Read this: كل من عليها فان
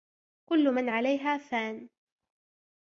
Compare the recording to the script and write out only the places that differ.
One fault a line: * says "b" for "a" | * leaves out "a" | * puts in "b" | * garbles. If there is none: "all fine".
all fine